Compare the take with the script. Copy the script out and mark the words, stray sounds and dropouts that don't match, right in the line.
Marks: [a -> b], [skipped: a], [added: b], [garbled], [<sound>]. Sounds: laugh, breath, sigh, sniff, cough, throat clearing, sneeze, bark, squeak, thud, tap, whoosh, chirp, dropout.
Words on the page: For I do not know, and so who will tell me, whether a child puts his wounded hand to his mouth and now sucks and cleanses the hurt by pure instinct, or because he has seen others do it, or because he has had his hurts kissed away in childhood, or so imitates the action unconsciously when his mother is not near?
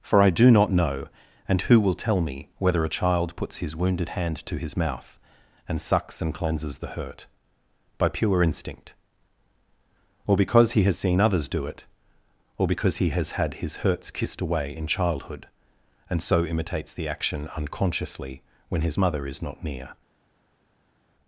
For I do not know, and [skipped: so] who will tell me, whether a child puts his wounded hand to his mouth and [skipped: now] sucks and cleanses the hurt by pure instinct, or because he has seen others do it, or because he has had his hurts kissed away in childhood, [or -> and] so imitates the action unconsciously when his mother is not near?